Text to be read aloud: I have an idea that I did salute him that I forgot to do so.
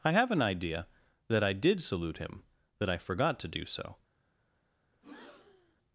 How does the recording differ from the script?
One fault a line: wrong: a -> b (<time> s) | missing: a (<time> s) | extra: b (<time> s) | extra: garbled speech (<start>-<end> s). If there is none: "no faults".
no faults